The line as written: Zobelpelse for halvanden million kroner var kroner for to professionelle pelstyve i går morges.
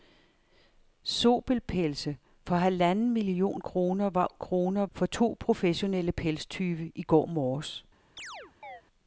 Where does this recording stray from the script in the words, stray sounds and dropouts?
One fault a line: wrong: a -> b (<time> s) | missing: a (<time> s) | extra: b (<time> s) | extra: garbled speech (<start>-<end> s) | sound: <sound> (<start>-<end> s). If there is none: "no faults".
sound: chirp (8.2-8.8 s)